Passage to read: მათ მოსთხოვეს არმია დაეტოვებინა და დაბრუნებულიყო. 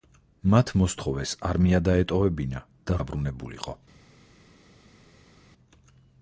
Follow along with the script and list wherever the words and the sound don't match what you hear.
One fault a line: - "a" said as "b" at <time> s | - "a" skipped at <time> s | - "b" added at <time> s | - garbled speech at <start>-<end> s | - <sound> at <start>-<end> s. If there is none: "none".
none